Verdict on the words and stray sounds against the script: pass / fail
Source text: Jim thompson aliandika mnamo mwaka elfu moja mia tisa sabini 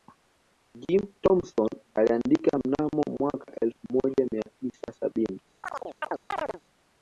fail